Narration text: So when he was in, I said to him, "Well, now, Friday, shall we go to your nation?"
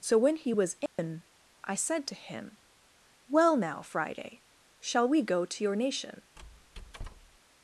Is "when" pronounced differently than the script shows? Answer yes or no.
no